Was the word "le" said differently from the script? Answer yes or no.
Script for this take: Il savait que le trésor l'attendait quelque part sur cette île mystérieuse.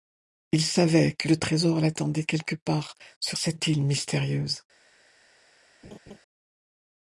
no